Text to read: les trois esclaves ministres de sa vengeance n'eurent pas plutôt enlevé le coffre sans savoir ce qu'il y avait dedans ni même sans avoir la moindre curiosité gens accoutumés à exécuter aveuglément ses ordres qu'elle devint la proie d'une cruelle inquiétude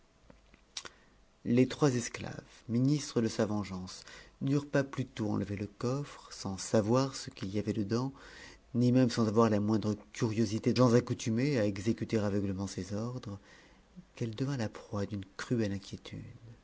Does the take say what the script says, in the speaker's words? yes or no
yes